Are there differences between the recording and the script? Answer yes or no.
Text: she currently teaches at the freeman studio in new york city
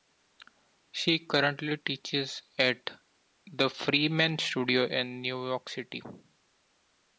no